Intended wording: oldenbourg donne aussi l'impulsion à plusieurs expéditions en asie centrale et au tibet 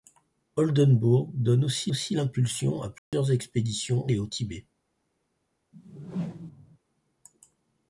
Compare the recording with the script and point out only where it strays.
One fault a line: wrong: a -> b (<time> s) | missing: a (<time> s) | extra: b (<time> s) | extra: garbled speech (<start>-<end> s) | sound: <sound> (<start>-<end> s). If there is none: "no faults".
extra: aussi (1.9 s)
sound: dropout (3.0-3.1 s)
missing: en asie centrale (4.1 s)
sound: whoosh (5.7-6.8 s)